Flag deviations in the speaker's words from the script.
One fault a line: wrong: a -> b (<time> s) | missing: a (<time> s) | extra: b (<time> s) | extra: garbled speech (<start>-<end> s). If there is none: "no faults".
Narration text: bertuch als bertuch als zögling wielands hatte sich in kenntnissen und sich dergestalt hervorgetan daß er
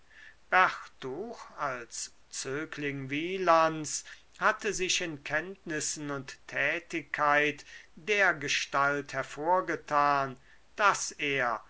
missing: bertuch als (2.1 s)
wrong: sich -> tätigkeit (6.5 s)